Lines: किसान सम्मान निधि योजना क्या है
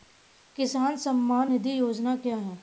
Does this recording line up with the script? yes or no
yes